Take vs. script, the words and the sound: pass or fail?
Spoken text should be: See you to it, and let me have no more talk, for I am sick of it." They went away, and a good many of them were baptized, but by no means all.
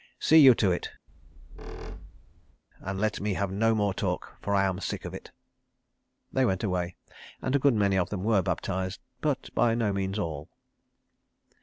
fail